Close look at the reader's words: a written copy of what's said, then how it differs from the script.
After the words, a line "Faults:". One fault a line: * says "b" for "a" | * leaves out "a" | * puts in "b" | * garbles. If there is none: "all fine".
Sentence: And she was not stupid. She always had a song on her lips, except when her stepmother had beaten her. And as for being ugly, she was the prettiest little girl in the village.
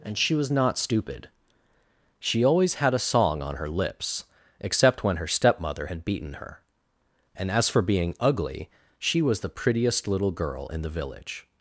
And she was not stupid. She always had a song on her lips, except when her stepmother had beaten her. And as for being ugly, she was the prettiest little girl in the village.
Faults:
all fine